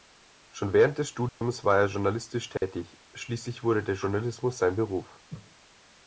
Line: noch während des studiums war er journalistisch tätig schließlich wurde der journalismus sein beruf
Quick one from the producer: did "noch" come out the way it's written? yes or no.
no